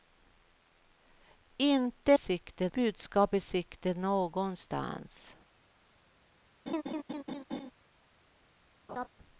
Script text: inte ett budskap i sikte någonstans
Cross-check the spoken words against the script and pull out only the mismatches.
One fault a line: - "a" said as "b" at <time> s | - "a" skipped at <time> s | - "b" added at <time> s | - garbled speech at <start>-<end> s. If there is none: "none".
- "ett" said as "sikte" at 2.1 s